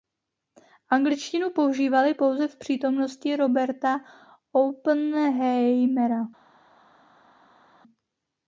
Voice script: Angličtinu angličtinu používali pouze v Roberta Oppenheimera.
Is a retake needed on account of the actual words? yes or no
yes